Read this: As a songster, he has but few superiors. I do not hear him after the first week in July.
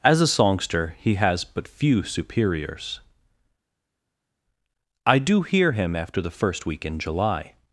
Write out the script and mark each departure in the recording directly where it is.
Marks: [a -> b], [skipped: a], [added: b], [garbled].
As a songster, he has but few superiors. I do [skipped: not] hear him after the first week in July.